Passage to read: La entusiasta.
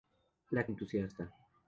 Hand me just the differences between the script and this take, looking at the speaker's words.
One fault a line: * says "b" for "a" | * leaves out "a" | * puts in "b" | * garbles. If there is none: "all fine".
all fine